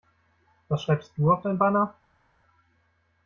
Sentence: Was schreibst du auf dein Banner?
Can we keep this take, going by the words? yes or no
yes